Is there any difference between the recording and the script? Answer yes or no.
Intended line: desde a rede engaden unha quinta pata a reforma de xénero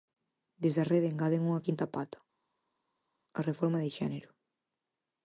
no